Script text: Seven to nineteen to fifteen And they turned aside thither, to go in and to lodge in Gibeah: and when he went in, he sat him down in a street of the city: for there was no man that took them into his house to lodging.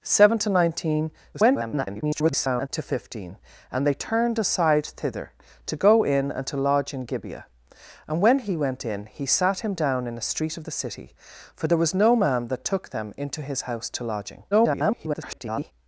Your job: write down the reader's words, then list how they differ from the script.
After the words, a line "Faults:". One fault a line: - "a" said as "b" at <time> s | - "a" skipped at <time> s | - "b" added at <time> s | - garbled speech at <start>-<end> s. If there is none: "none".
Seven to nineteen [garbled] to fifteen And they turned aside thither, to go in and to lodge in Gibeah: and when he went in, he sat him down in a street of the city: for there was no man that took them into his house to lodging. [garbled]
Faults:
- garbled speech at 1.3-2.7 s
- garbled speech at 14.5-15.7 s